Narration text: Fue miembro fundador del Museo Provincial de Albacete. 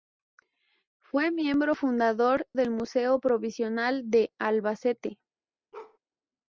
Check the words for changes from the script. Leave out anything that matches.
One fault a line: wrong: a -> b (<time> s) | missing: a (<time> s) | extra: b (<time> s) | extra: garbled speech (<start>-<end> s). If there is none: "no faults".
no faults